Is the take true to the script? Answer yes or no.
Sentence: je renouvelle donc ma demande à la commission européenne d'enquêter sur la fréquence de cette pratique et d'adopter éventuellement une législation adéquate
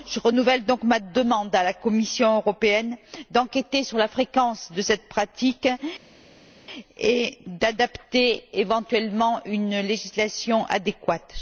yes